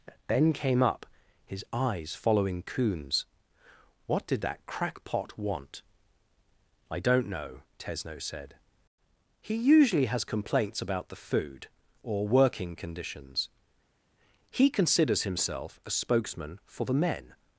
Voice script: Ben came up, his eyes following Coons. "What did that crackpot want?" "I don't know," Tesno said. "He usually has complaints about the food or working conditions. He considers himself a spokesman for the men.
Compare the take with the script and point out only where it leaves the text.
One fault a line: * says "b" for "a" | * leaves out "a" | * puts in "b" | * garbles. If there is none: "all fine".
all fine